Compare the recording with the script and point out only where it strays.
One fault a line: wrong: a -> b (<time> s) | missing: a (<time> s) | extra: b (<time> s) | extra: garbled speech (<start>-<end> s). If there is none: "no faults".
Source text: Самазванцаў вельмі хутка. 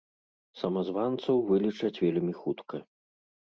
extra: вылічаць (1.5 s)